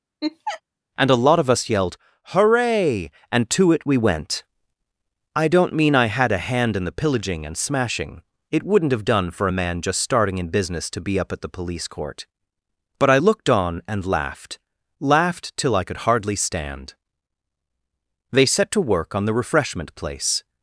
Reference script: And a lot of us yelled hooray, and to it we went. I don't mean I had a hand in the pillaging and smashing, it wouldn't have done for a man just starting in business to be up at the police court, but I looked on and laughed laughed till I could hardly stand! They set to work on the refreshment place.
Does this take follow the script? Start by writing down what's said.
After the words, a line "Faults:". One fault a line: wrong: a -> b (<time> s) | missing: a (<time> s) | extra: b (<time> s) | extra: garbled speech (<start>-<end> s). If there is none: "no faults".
And a lot of us yelled hooray, and to it we went. I don't mean I had a hand in the pillaging and smashing, it wouldn't have done for a man just starting in business to be up at the police court, but I looked on and laughed laughed till I could hardly stand! They set to work on the refreshment place.
Faults:
no faults